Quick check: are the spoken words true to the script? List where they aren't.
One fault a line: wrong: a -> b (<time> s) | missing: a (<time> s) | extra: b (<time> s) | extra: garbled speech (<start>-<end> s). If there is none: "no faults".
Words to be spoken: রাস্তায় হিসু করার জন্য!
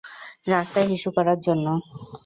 no faults